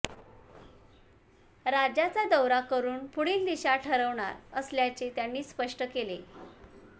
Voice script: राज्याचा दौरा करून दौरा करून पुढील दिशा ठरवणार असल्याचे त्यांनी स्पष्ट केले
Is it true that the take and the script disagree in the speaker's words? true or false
true